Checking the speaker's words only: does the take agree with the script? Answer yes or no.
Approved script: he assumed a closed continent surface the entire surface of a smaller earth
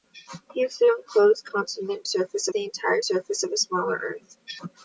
yes